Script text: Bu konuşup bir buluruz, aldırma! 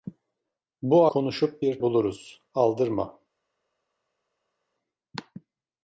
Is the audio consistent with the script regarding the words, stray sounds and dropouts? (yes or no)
yes